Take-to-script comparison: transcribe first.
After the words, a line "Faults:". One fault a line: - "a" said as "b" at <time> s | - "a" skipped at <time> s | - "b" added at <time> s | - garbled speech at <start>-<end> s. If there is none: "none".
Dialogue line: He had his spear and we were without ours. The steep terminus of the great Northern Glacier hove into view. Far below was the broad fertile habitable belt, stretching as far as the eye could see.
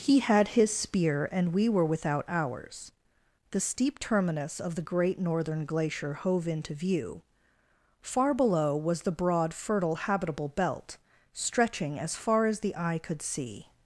He had his spear and we were without ours. The steep terminus of the great Northern Glacier hove into view. Far below was the broad fertile habitable belt, stretching as far as the eye could see.
Faults:
none